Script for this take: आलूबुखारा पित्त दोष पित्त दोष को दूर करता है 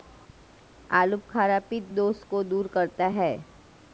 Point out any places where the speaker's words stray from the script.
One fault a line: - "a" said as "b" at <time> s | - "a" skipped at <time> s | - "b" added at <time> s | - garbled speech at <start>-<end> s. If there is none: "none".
- "पित्त दोष" skipped at 2.2 s